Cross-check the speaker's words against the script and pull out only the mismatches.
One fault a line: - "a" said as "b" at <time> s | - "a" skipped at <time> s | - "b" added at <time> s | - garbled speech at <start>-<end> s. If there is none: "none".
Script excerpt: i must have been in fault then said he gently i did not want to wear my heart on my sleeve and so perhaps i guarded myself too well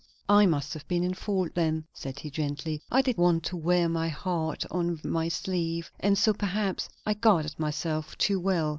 - "not" skipped at 3.2 s